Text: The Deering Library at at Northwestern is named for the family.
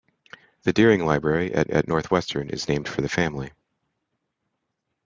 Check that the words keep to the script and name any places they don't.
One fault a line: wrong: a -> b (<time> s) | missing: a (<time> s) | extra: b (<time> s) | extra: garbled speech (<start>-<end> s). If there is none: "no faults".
no faults